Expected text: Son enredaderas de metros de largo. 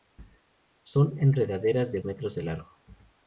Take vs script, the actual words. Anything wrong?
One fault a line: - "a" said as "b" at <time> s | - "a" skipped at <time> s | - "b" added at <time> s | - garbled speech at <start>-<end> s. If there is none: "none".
none